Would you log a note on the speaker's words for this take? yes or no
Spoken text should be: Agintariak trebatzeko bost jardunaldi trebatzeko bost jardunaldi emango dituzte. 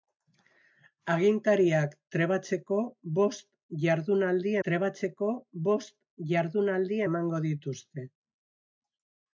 no